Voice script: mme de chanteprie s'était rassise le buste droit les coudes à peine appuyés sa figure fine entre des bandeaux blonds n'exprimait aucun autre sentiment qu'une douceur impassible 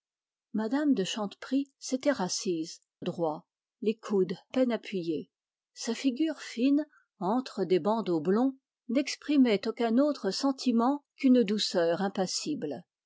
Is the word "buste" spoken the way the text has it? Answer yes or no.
no